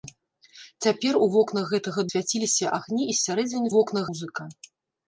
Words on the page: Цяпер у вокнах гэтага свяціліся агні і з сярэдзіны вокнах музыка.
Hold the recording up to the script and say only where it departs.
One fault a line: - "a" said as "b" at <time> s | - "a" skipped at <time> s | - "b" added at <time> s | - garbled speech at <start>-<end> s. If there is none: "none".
none